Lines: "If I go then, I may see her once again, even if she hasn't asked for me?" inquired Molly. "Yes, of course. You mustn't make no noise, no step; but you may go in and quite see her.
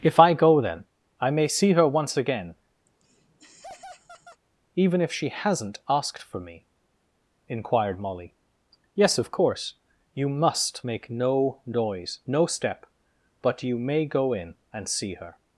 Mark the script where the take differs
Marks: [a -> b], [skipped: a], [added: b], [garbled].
"If I go then, I may see her once again, even if she hasn't asked for me?" inquired Molly. "Yes, of course. You [mustn't -> must] make no noise, no step; but you may go in and [skipped: quite] see her.